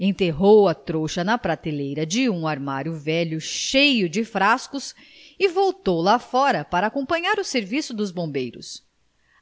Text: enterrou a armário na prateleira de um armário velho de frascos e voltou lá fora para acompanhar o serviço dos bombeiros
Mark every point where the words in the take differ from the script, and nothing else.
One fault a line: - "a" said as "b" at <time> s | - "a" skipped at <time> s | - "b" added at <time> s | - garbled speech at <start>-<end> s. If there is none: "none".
- "armário" said as "trouxa" at 0.7 s
- "cheio" added at 3.4 s